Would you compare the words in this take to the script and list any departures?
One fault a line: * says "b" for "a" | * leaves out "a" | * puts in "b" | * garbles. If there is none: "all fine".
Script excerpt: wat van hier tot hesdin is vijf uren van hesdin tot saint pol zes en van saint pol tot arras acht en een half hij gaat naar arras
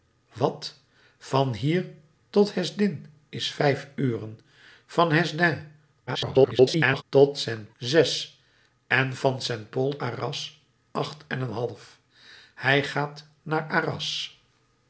* garbles
* leaves out "pol"
* leaves out "tot"